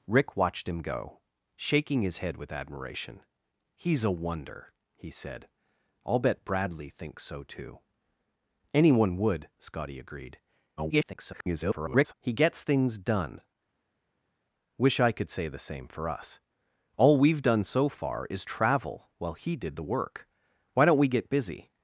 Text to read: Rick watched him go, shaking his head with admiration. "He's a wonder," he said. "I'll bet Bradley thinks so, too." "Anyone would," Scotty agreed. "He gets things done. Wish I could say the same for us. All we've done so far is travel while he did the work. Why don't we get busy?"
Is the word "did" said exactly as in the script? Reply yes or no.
yes